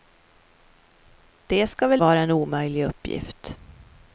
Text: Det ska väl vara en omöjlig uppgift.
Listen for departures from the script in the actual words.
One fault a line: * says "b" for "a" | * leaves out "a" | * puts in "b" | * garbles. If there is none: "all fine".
all fine